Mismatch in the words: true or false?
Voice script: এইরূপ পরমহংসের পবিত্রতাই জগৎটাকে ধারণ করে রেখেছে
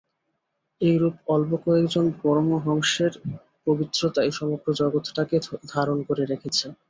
true